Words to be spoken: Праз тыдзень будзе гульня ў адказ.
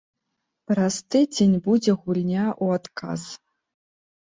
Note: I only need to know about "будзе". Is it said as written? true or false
true